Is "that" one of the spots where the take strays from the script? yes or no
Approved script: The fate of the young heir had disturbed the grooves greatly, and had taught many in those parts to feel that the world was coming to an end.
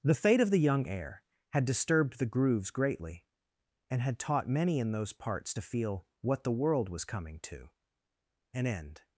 yes